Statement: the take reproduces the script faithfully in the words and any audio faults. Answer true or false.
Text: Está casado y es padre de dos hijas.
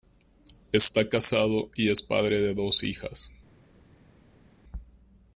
true